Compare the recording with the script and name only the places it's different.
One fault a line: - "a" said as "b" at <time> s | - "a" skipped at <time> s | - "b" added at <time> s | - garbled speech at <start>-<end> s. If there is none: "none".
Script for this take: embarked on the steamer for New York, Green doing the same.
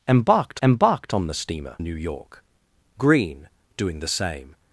- "embarked" added at 0.6 s
- "for" skipped at 1.8 s